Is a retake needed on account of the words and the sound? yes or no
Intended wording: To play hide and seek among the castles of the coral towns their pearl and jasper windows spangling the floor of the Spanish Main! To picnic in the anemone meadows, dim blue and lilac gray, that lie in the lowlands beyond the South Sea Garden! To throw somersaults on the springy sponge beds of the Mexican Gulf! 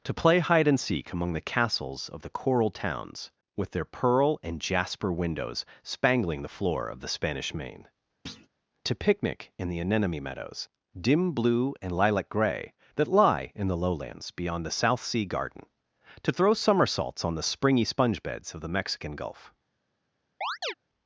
yes